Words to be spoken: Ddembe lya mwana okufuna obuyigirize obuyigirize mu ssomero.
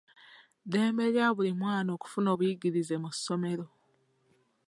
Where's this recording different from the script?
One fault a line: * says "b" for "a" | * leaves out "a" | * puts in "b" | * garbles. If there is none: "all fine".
* puts in "buli"
* leaves out "obuyigirize"